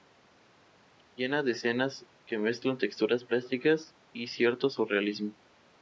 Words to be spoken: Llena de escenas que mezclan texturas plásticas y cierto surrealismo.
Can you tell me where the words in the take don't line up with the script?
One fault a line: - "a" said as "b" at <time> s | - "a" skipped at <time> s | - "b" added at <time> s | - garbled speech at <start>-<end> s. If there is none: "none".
none